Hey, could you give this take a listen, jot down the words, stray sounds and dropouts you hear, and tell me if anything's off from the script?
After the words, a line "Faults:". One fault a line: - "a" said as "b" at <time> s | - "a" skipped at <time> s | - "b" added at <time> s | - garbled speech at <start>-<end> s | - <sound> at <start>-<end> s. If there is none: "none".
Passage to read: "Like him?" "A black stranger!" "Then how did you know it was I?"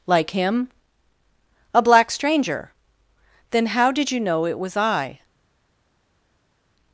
"Like him?" "A black stranger!" "Then how did you know it was I?"
Faults:
none